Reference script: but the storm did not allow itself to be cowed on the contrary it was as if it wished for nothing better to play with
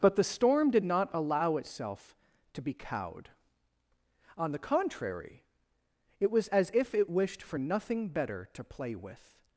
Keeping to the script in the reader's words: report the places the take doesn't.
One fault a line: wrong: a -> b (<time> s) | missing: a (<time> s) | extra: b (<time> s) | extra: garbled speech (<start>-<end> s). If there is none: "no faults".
no faults